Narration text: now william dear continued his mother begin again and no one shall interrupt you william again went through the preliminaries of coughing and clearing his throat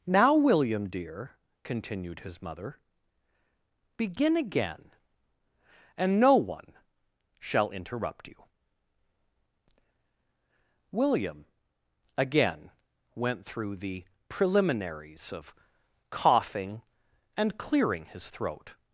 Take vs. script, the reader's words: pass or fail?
pass